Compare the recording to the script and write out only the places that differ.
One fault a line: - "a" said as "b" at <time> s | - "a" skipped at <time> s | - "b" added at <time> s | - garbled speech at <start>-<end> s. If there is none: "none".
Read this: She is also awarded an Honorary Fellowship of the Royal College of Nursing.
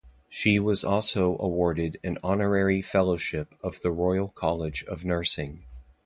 - "is" said as "was" at 0.6 s